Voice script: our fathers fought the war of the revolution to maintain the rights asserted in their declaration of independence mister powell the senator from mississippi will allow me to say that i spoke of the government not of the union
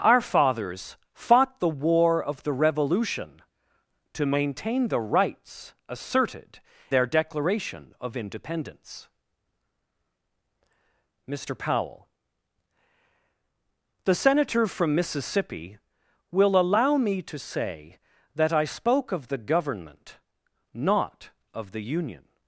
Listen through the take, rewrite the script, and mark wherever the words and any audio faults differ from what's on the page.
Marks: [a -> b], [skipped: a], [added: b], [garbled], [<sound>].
our fathers fought the war of the revolution to maintain the rights asserted [skipped: in] their declaration of independence mister powell the senator from mississippi will allow me to say that i spoke of the government not of the union